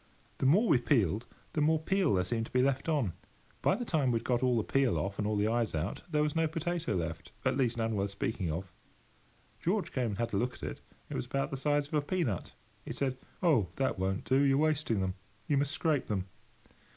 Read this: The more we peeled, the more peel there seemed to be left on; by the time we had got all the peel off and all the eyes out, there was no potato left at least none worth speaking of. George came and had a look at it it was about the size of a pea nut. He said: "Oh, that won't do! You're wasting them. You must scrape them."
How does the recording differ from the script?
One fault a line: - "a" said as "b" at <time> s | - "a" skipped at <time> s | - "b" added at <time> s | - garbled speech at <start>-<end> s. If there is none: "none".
none